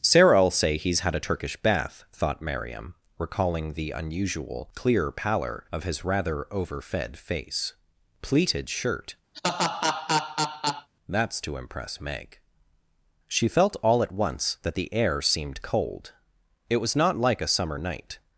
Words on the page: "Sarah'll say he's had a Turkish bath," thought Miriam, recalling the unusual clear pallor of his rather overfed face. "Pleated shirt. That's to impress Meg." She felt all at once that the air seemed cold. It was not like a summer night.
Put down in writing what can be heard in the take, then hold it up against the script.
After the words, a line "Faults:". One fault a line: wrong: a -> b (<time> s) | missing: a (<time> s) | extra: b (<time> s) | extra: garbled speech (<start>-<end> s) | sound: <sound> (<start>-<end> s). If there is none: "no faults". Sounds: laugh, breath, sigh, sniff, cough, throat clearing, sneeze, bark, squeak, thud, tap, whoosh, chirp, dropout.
"Sarah'll say he's had a Turkish bath," thought Miriam, recalling the unusual clear pallor of his rather overfed face. "Pleated shirt. That's to impress Meg." She felt all at once that the air seemed cold. It was not like a summer night.
Faults:
sound: laugh (9.3-10.9 s)